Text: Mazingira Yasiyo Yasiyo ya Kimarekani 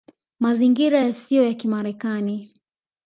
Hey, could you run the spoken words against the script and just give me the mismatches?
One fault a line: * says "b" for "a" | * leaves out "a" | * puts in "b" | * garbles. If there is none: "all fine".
* leaves out "Yasiyo"